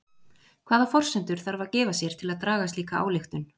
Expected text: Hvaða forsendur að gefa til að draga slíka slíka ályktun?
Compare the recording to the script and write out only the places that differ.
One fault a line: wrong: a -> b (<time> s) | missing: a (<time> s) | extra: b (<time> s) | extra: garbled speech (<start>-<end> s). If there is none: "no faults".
extra: þarf (1.5 s)
extra: sér (2.0 s)
missing: slíka (3.1 s)